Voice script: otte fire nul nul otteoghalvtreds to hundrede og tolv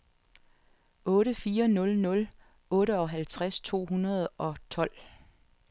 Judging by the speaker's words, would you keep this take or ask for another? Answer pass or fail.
pass